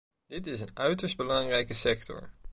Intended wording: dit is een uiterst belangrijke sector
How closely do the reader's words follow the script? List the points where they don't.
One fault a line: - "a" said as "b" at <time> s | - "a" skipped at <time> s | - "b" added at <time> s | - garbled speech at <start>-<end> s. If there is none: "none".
none